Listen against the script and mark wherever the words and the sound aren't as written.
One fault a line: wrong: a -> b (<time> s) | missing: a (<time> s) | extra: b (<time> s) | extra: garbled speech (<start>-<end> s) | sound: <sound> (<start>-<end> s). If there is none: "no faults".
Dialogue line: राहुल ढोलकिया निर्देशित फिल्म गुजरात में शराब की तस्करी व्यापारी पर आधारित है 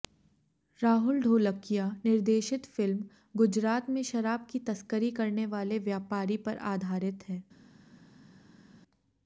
extra: करने वाले (5.1 s)